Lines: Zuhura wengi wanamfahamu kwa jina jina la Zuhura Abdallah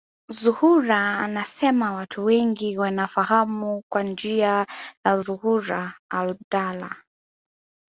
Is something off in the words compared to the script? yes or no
yes